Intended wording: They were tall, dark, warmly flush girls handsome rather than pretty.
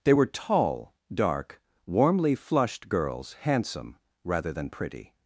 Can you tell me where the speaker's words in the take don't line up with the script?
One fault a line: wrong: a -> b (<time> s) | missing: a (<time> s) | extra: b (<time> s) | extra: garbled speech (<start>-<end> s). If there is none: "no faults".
wrong: flush -> flushed (2.3 s)